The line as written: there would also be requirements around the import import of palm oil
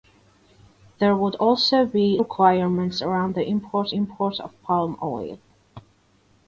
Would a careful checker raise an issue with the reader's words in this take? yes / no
no